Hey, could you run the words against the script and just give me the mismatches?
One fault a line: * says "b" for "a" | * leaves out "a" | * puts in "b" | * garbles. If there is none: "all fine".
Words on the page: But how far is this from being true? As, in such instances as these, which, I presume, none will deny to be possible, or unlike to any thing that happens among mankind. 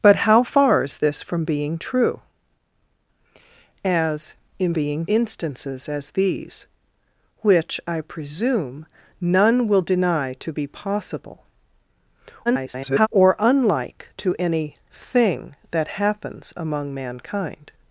* says "being" for "such"
* garbles